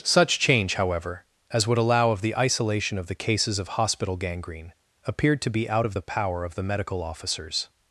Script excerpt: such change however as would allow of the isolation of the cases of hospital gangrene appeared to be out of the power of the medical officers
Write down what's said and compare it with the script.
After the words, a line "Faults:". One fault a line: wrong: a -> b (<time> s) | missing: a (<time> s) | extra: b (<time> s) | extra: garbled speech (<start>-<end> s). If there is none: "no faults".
such change however as would allow of the isolation of the cases of hospital gangrene appeared to be out of the power of the medical officers
Faults:
no faults